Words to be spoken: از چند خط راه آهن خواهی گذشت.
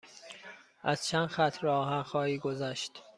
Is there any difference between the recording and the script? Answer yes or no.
no